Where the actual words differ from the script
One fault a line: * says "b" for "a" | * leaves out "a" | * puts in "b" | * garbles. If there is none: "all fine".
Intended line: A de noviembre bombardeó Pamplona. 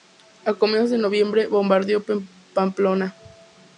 * puts in "comienzos"